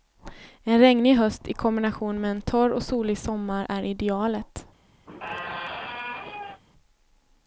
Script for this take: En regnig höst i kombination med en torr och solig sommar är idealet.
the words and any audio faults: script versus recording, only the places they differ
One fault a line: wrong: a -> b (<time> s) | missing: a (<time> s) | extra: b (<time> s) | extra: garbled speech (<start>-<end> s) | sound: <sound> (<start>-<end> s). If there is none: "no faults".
sound: squeak (5.1-6.6 s)